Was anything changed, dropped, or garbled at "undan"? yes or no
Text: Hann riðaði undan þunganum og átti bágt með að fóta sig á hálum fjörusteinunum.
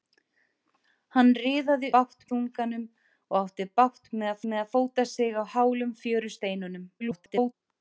yes